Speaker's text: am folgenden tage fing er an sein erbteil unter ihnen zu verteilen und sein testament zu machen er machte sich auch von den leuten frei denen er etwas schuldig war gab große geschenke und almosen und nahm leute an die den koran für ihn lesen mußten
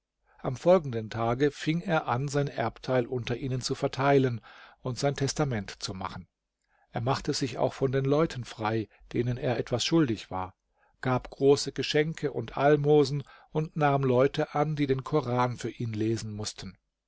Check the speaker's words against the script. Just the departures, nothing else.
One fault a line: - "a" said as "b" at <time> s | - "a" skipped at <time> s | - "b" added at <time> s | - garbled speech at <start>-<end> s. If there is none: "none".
none